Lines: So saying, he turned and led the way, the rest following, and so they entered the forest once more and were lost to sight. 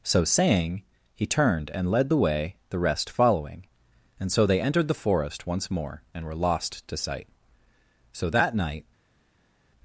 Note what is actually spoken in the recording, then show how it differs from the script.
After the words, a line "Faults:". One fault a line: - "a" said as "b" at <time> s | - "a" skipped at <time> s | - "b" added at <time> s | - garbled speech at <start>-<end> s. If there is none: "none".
So saying, he turned and led the way, the rest following, and so they entered the forest once more and were lost to sight. So that night
Faults:
- "So that night" added at 8.1 s